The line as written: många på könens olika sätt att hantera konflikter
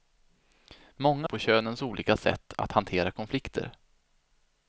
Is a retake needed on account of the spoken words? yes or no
no